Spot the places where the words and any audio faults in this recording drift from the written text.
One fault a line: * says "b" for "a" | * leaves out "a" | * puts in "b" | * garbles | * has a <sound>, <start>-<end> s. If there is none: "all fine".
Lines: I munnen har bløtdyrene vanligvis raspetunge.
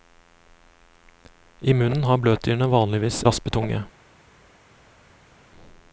all fine